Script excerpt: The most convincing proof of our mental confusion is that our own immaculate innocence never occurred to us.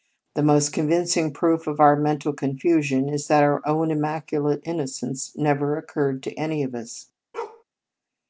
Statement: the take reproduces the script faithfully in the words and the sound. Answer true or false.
false